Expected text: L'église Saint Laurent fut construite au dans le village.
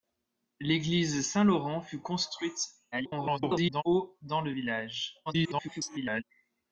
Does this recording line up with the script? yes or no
no